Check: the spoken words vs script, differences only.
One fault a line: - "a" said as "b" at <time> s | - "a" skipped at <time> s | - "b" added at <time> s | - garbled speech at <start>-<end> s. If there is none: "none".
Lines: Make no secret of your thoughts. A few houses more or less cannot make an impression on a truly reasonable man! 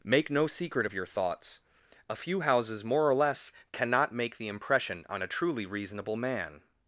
- "an" said as "the" at 4.4 s